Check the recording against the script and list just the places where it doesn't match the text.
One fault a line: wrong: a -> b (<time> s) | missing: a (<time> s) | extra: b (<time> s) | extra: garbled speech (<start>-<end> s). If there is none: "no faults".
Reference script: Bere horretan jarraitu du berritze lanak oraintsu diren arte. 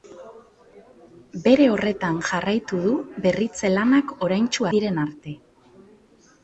no faults